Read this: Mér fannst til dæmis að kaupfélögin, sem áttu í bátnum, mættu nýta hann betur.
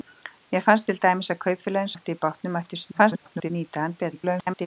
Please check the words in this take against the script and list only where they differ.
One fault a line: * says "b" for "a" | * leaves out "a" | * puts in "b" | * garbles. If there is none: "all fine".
* leaves out "sem"
* garbles
* garbles